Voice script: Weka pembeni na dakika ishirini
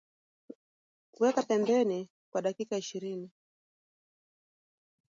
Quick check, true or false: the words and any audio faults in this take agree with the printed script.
false